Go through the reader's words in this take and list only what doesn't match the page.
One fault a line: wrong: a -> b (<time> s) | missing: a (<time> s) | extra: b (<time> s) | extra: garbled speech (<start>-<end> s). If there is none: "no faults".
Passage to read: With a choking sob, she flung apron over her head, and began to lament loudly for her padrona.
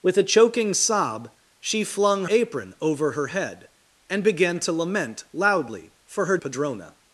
no faults